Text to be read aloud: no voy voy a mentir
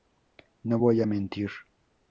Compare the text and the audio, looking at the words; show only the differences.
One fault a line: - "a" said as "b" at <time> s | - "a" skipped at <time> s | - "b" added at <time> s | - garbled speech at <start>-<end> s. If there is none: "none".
- "voy" skipped at 1.0 s